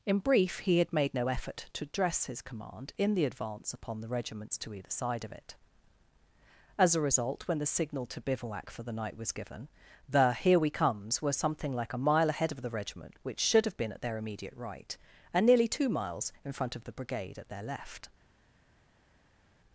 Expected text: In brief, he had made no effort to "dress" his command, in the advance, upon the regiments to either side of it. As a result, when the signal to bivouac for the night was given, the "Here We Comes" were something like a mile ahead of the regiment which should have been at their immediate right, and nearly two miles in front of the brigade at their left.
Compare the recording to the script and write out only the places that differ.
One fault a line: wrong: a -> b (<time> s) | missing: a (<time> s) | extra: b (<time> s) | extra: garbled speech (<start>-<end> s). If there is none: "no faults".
no faults